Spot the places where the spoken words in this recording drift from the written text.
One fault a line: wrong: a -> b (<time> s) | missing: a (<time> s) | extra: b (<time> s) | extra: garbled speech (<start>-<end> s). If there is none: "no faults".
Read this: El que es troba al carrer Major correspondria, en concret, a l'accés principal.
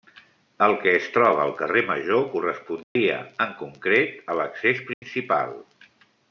no faults